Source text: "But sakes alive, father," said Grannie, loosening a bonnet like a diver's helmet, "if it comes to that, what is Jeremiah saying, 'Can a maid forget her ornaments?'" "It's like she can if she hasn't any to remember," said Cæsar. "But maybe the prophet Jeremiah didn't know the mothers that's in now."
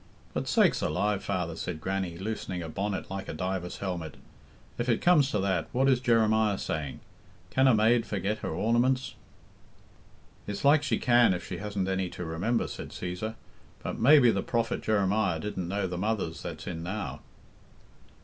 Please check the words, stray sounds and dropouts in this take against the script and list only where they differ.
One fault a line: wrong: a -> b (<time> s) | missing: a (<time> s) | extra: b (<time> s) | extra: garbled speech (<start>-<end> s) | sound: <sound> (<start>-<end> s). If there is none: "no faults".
no faults